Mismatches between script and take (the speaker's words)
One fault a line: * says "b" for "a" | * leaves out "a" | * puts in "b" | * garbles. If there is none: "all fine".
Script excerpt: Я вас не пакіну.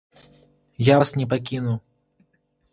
all fine